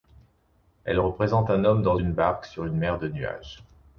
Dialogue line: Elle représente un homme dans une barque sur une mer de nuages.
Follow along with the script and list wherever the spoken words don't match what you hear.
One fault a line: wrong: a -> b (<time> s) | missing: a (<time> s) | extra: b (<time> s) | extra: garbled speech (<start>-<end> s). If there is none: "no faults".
no faults